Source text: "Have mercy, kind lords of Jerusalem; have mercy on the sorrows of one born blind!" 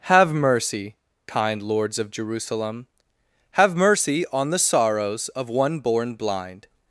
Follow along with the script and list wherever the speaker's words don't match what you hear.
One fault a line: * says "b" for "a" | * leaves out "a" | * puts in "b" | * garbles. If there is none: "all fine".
all fine